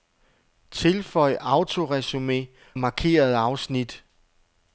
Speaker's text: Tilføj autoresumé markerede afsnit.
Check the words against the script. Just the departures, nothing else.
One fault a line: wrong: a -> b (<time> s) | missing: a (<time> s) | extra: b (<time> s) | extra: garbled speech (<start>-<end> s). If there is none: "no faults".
no faults